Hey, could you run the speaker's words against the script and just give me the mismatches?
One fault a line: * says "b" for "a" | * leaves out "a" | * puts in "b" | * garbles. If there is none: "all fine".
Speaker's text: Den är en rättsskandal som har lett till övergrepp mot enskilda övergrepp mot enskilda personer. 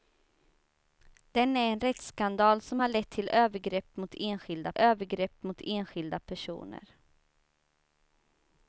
all fine